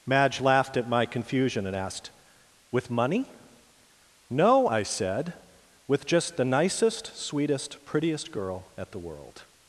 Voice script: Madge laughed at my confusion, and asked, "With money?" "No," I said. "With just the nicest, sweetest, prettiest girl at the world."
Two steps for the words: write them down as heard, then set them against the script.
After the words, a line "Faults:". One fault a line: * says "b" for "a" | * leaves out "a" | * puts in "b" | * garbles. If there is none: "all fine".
Madge laughed at my confusion, and asked, "With money?" "No," I said. "With just the nicest, sweetest, prettiest girl at the world."
Faults:
all fine